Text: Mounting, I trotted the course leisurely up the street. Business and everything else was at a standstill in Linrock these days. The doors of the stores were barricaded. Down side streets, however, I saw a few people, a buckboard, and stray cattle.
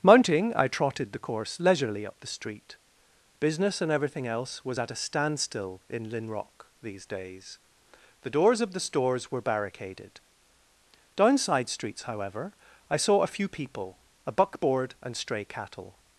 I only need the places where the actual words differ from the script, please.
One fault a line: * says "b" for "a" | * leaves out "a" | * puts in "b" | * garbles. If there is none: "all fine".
all fine